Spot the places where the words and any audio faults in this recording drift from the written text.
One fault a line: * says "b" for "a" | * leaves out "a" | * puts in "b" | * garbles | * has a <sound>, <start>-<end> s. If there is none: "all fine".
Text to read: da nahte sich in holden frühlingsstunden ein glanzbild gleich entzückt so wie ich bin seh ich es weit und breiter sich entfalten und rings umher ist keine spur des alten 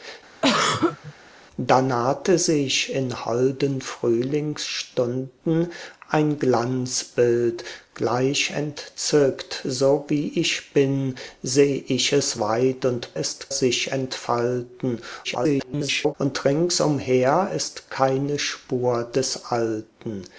* has a throat clearing, 0.4-1.1 s
* says "ist" for "breiter"
* garbles